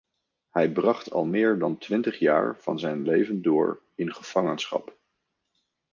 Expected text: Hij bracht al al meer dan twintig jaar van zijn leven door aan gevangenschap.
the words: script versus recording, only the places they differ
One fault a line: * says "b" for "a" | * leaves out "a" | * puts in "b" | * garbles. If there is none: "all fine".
* leaves out "al"
* says "in" for "aan"